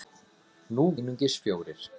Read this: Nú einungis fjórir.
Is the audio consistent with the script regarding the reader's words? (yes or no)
yes